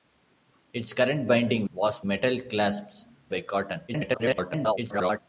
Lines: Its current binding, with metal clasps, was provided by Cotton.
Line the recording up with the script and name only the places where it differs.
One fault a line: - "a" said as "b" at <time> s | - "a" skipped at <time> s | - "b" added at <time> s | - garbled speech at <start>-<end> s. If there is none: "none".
- "with" said as "was" at 1.7 s
- "was provided" skipped at 3.1 s
- garbled speech at 3.9-5.2 s